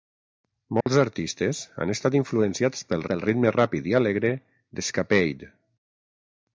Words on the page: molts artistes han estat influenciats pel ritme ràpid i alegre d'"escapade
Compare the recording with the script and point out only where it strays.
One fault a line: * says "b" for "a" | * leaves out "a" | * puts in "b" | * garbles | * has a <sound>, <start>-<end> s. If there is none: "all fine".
* has a dropout, 0.8-0.9 s
* puts in "pel"